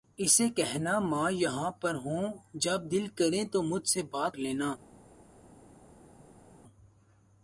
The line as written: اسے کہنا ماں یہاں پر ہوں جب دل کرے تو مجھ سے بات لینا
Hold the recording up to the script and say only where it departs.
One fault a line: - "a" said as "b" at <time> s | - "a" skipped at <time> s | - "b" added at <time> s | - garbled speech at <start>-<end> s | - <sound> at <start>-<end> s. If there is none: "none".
none